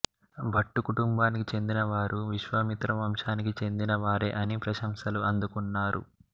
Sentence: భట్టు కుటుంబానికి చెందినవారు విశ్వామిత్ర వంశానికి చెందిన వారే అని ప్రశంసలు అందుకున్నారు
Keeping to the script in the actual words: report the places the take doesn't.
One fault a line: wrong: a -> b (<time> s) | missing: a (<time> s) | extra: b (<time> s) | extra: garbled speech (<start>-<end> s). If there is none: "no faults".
no faults